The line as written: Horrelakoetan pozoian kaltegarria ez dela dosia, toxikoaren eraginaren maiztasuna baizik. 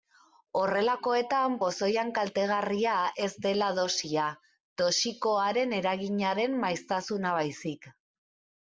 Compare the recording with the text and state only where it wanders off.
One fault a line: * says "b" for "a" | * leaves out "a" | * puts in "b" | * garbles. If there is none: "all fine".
all fine